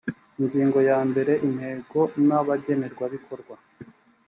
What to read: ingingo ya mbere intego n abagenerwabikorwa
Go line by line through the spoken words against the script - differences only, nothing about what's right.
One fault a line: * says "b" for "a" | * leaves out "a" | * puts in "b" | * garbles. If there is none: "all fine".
all fine